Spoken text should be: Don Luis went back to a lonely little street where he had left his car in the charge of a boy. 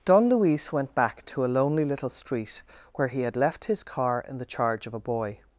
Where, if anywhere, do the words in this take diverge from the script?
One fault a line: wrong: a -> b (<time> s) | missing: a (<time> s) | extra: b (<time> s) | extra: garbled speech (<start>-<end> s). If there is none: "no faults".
no faults